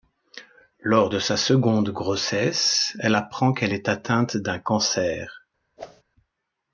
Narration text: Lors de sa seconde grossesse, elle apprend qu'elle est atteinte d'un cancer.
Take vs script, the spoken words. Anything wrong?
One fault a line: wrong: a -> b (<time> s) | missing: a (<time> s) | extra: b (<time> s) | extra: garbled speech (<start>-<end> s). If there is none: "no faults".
no faults